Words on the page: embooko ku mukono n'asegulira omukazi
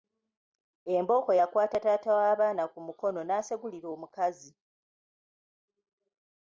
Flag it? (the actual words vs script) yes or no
yes